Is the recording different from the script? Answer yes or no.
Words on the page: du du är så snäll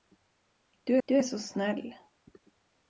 no